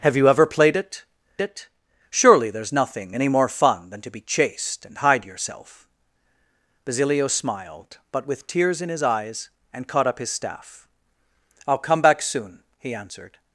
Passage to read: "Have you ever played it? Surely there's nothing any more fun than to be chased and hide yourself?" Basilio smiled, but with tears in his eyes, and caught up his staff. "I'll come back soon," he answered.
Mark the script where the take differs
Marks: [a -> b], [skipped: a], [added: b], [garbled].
"Have you ever played it? [added: it] Surely there's nothing any more fun than to be chased and hide yourself?" Basilio smiled, but with tears in his eyes, and caught up his staff. "I'll come back soon," he answered.